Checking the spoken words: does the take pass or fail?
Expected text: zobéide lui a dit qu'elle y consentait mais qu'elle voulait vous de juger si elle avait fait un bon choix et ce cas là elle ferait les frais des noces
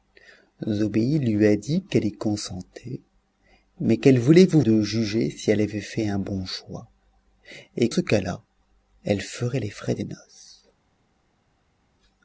pass